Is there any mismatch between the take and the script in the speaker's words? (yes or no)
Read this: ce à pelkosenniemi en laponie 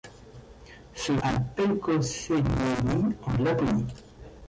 no